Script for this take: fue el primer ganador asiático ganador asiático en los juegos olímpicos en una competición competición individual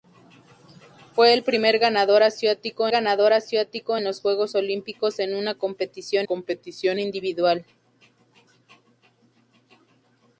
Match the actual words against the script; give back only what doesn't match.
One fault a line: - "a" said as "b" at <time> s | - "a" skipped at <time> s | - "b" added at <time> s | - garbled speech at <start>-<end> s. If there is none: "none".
none